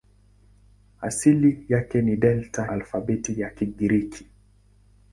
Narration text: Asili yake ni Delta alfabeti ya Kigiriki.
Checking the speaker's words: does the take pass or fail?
pass